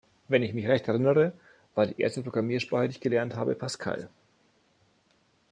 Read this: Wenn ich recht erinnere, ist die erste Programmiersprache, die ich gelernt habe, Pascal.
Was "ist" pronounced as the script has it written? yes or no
no